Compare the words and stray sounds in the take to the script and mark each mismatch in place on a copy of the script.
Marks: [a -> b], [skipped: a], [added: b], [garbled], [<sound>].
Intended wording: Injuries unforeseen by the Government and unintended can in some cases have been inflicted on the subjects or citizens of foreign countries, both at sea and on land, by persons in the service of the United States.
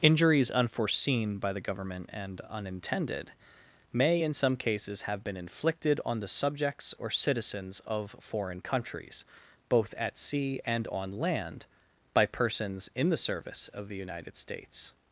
Injuries unforeseen by the Government and unintended [can -> may] in some cases have been inflicted on the subjects or citizens of foreign countries, both at sea and on land, by persons in the service of the United States.